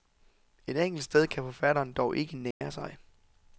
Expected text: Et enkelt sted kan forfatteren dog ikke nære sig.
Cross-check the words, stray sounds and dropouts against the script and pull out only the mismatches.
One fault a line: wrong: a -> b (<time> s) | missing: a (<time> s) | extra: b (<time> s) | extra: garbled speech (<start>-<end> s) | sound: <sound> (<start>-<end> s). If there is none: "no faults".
sound: dropout (2.5-2.6 s)